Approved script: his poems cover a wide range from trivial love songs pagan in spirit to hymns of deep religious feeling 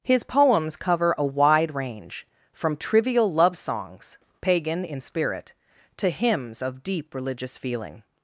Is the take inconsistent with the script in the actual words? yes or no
no